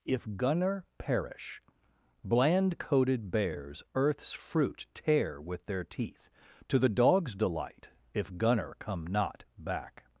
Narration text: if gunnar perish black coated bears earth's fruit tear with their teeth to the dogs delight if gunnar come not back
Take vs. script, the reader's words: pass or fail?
fail